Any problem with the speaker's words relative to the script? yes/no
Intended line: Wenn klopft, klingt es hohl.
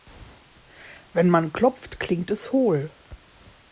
yes